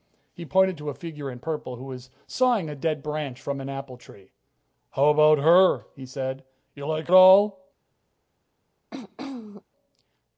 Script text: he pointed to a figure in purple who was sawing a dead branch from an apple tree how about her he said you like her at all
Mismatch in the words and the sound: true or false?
true